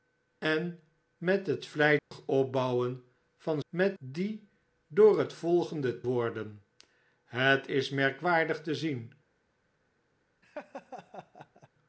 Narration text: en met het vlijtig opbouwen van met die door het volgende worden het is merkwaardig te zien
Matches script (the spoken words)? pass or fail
pass